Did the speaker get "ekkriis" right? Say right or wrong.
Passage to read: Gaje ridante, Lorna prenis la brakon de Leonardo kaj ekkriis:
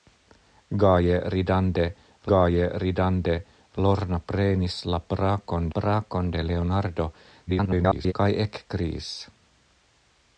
right